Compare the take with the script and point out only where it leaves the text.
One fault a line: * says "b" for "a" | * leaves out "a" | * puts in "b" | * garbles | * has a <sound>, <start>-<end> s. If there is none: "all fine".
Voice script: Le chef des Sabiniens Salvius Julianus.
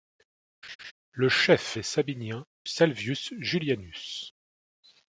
* has a laugh, 0.6-0.9 s